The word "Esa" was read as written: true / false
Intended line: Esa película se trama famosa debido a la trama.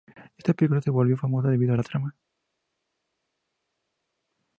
false